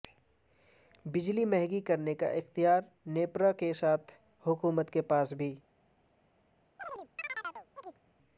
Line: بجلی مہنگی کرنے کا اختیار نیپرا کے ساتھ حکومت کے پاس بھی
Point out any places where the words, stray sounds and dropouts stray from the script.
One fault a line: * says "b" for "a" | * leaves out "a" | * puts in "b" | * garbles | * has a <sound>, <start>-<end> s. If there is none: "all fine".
* has a chirp, 6.8-8.0 s